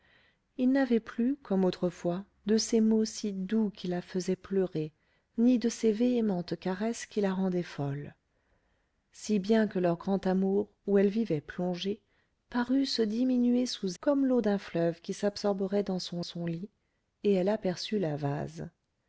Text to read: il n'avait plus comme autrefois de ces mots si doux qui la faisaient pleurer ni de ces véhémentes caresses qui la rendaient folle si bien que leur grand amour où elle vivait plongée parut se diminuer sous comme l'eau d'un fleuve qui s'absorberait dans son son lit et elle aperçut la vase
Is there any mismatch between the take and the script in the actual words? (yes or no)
no